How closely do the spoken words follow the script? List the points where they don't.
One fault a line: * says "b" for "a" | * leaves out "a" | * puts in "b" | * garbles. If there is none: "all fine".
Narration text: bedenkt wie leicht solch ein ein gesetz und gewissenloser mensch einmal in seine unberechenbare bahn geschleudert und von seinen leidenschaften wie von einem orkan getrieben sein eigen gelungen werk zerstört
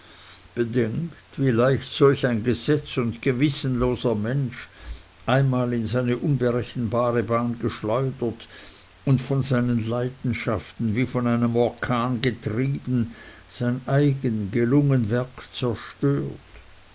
* leaves out "ein"